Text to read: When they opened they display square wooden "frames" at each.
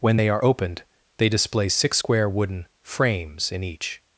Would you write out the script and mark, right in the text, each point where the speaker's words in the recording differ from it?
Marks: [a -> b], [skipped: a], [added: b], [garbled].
When they [added: are] opened they display [added: six] square wooden "frames" [at -> in] each.